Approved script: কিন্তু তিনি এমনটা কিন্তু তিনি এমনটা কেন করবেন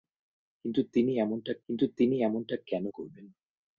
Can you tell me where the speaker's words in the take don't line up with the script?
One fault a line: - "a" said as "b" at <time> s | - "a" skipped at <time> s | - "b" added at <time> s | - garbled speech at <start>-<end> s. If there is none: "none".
none